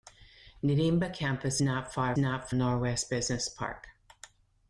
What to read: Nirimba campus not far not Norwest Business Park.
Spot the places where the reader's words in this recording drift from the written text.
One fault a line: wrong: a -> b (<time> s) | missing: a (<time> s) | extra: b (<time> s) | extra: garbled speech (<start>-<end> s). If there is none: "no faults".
no faults